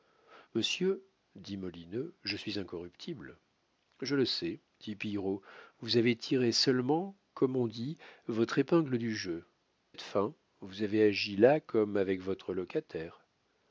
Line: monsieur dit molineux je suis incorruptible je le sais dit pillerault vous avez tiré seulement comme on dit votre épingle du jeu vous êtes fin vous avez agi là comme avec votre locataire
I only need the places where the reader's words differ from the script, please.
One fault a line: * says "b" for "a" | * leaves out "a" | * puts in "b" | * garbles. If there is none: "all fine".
* leaves out "vous"